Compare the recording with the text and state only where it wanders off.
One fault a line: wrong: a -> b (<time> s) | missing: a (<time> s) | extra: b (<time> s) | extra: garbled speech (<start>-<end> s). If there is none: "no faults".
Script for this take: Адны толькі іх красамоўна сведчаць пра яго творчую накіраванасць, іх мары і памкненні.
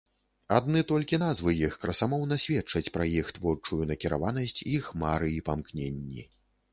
extra: назвы (1.2 s)
wrong: яго -> іх (3.2 s)